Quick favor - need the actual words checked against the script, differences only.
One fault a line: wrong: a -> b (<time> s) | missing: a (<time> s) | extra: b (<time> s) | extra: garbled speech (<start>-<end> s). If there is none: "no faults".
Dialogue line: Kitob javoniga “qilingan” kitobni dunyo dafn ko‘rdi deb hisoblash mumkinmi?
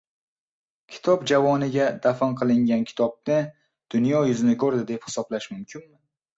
extra: dafn (2.1 s)
wrong: dafn -> yuzini (4.3 s)